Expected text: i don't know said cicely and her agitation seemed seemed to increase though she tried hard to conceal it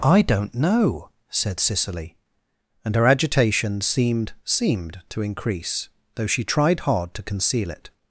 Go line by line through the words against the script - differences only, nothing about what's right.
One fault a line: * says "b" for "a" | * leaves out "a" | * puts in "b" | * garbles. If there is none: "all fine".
all fine